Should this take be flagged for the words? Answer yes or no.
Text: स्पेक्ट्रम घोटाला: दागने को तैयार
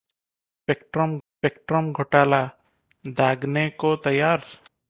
yes